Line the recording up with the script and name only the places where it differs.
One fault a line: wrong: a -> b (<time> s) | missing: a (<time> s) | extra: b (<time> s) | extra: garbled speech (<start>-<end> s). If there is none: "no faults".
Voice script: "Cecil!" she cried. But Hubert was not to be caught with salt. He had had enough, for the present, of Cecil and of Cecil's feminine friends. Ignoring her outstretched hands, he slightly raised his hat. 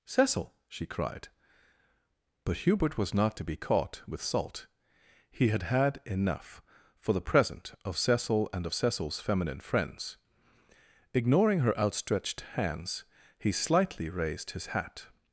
no faults